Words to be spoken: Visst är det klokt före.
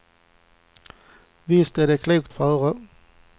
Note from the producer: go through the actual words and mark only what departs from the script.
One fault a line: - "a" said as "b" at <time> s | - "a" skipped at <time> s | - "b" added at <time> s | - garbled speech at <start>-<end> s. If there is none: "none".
none